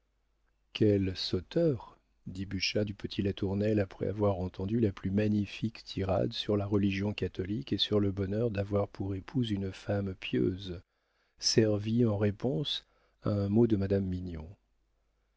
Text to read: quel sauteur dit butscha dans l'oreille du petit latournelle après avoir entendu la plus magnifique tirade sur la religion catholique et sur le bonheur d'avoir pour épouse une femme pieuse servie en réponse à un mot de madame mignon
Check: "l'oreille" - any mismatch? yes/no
yes